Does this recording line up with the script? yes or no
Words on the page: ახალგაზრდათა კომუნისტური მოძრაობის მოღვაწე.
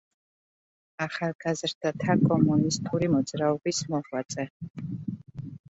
yes